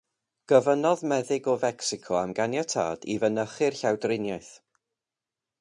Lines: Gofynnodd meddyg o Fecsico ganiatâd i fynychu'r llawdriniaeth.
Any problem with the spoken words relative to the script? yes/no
yes